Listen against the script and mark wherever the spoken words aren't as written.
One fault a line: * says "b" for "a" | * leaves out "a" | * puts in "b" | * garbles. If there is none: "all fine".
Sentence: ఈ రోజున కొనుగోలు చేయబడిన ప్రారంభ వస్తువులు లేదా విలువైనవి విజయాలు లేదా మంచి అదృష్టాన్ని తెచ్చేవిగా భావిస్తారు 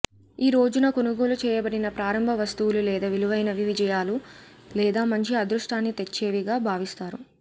all fine